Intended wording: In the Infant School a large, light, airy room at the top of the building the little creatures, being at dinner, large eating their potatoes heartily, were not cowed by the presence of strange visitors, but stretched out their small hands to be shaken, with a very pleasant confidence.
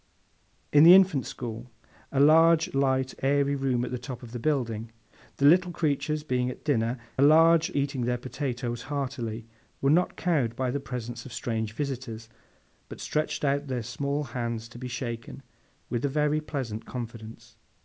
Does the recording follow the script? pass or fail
pass